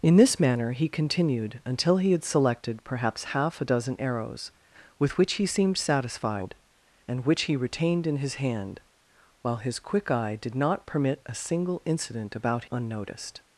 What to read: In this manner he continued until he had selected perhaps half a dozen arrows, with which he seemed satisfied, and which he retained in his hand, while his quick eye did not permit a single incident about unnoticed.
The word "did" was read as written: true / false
true